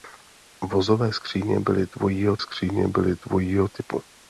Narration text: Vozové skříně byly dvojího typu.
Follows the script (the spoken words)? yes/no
no